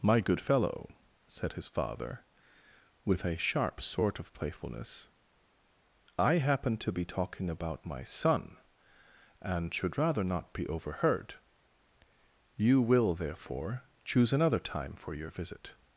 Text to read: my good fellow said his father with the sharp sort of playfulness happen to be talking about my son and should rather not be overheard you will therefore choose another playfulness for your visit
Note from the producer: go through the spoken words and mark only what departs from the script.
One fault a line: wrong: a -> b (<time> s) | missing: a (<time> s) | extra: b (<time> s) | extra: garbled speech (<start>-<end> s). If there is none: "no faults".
wrong: the -> a (3.3 s)
extra: i (6.2 s)
wrong: playfulness -> time (14.6 s)